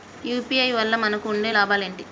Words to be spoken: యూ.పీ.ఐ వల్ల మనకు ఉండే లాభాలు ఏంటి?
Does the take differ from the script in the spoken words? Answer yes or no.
no